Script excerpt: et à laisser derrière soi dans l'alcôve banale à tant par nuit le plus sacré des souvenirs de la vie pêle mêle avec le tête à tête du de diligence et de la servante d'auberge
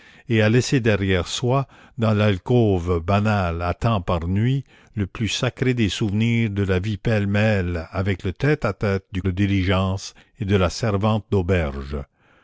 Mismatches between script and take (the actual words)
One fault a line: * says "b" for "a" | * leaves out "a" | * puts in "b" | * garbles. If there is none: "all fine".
all fine